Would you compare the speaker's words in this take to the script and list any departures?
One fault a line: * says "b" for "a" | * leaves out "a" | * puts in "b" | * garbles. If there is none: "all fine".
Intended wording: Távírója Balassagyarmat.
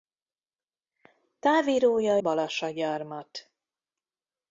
all fine